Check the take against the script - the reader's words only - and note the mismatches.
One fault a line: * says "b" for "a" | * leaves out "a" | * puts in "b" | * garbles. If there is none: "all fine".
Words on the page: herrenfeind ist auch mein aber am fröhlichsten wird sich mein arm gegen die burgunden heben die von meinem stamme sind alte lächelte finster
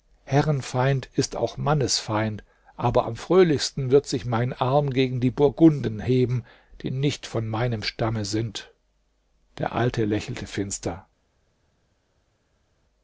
* says "mannesfeind" for "mein"
* puts in "nicht"
* puts in "der"